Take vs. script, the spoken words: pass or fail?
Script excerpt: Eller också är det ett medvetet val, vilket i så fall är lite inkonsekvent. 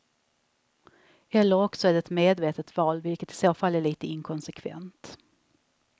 pass